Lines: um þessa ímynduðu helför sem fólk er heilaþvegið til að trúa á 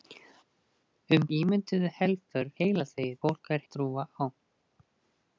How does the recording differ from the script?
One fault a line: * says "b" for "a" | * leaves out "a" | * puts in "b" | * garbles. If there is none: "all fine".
* leaves out "þessa"
* says "heilaþvegið" for "sem"
* leaves out "heilaþvegið til"